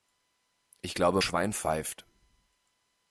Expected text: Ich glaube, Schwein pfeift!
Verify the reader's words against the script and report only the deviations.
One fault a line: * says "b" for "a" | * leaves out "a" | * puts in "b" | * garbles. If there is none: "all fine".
all fine